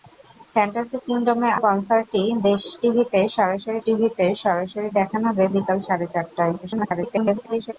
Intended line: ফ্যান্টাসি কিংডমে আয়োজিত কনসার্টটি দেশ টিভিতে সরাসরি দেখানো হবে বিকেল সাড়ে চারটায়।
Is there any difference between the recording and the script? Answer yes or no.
yes